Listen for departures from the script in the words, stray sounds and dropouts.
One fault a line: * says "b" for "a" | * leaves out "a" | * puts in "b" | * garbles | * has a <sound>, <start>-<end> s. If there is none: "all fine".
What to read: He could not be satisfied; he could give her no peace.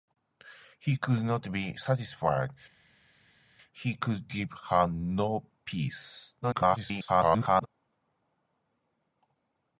* garbles